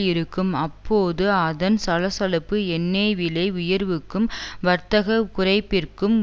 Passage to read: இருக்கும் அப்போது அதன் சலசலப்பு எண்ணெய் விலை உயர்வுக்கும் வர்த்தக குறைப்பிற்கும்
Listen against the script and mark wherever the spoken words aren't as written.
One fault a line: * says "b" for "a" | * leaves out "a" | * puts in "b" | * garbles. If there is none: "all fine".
all fine